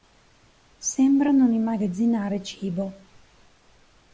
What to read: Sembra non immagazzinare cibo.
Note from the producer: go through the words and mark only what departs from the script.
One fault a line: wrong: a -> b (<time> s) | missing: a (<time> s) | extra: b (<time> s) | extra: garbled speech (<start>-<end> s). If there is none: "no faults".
no faults